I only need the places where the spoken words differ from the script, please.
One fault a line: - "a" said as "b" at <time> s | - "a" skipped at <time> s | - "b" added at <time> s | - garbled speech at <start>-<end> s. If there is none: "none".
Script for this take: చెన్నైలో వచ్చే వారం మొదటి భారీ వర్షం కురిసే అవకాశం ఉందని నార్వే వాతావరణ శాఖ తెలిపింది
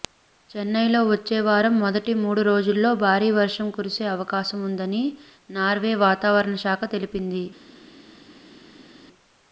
- "మూడు రోజుల్లో" added at 2.2 s